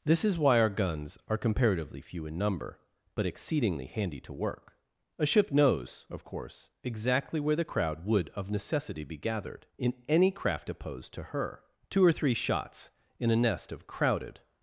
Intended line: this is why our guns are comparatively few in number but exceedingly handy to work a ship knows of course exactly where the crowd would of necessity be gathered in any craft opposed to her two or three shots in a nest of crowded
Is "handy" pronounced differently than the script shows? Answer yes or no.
no